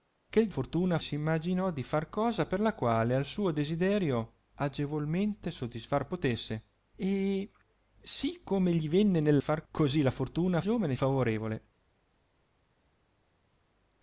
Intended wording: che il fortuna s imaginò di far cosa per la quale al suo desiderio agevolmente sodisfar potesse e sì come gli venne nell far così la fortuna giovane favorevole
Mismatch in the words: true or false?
false